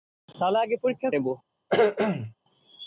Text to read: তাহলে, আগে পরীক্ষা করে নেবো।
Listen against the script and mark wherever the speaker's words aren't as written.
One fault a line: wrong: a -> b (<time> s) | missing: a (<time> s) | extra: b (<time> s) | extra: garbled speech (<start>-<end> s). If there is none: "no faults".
missing: করে (1.1 s)